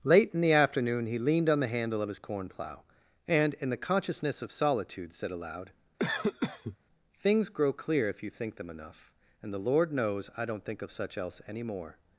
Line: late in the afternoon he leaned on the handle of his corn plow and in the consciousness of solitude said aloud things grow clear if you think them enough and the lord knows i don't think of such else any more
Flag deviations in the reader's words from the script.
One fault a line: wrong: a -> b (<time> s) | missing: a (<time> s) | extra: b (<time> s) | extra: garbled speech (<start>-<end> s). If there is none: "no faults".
no faults